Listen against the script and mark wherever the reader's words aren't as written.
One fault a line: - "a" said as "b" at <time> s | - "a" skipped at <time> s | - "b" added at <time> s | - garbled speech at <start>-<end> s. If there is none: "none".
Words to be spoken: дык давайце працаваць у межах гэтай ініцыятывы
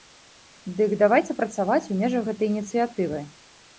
none